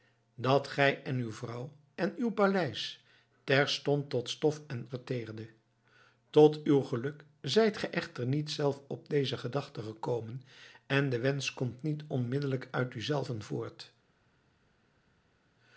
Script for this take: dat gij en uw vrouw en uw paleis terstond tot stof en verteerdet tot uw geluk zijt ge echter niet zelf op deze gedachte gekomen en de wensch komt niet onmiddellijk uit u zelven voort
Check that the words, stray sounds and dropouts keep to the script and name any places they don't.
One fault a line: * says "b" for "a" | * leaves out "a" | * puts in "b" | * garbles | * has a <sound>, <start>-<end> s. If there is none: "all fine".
all fine